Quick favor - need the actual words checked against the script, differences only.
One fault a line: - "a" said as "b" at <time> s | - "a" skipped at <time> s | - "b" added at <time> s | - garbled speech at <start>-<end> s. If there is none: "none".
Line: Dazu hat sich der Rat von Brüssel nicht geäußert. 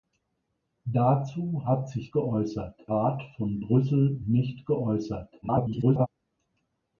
- "der" said as "geäußert" at 2.1 s
- garbled speech at 5.4-6.1 s